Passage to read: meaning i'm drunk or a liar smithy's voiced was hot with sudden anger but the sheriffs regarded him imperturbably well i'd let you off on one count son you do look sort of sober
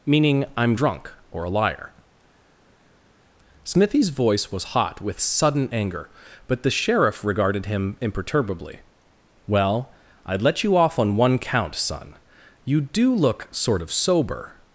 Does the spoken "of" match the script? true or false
true